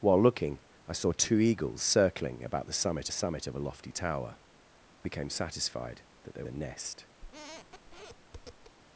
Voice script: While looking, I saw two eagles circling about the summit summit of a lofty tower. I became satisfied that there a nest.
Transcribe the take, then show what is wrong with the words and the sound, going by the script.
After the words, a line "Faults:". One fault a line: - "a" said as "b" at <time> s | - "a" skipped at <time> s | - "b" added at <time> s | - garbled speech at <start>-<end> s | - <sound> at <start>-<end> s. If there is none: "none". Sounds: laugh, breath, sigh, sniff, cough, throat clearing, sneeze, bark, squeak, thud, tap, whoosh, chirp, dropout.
While looking, I saw two eagles circling about the summit summit of a lofty tower. I became satisfied that there a nest.
Faults:
- squeak at 7.2-8.8 s